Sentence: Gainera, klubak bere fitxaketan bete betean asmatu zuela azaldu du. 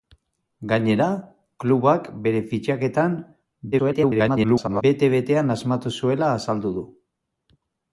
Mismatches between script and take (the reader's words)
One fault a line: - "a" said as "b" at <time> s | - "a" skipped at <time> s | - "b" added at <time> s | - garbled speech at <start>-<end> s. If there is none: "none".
- garbled speech at 3.7-4.8 s